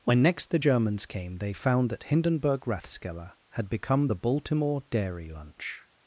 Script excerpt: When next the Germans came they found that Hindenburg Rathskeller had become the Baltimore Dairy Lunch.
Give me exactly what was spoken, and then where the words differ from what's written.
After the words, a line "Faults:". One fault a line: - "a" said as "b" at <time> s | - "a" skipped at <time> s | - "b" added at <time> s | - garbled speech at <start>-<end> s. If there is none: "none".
When next the Germans came they found that Hindenburg Rathskeller had become the Baltimore Dairy Lunch.
Faults:
none